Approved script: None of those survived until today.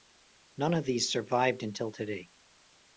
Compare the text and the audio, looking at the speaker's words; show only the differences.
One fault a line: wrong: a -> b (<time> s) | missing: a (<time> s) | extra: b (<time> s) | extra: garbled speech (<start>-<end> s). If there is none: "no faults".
wrong: those -> these (0.8 s)